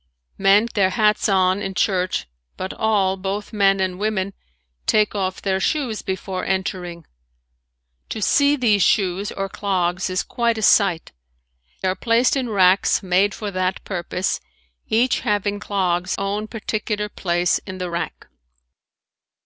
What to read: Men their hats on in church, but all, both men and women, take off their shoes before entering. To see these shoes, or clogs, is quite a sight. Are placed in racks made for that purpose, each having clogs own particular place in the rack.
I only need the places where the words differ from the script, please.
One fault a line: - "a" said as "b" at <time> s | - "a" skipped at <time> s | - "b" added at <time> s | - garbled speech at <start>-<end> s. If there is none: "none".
none